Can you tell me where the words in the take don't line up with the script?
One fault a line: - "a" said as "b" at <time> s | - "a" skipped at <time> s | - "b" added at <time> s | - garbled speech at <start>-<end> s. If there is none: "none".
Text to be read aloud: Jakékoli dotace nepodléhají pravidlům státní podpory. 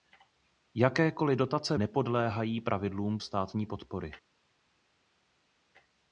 none